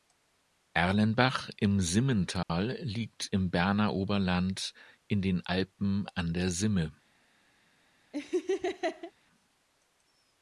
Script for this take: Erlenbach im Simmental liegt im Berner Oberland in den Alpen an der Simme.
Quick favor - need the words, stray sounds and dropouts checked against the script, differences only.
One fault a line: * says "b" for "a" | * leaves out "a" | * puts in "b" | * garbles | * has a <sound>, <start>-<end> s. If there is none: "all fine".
* has a dropout, 2.4-2.5 s
* has a laugh, 8.1-9.1 s